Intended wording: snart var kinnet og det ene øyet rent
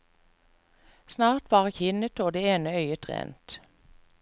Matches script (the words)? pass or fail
pass